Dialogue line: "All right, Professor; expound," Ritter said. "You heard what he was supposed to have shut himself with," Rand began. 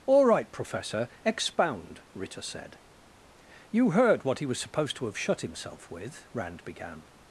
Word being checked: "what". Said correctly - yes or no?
yes